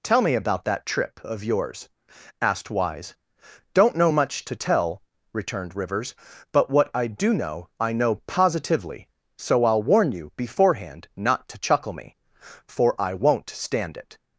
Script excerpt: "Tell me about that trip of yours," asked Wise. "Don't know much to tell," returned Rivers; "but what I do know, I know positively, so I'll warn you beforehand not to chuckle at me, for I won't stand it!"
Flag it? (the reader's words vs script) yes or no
yes